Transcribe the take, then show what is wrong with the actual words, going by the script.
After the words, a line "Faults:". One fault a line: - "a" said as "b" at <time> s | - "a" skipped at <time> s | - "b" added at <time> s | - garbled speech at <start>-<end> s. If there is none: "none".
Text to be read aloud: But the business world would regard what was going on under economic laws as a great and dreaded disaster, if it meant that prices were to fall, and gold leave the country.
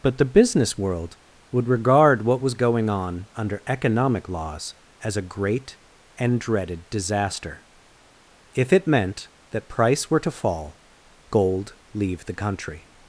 But the business world would regard what was going on under economic laws as a great and dreaded disaster, if it meant that price were to fall, gold leave the country.
Faults:
- "prices" said as "price" at 9.7 s
- "and" skipped at 10.8 s